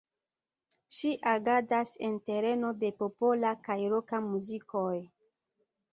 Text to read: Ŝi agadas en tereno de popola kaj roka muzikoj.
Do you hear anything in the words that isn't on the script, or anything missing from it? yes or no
no